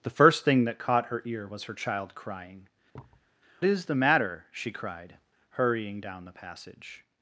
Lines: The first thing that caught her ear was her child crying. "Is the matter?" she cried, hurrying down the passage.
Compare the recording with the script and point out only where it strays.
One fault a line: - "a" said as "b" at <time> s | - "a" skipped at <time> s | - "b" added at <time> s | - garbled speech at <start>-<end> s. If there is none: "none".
none